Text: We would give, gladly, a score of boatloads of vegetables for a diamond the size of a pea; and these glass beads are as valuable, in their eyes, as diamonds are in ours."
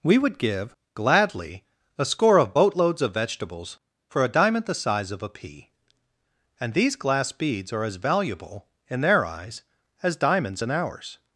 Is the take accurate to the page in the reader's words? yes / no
no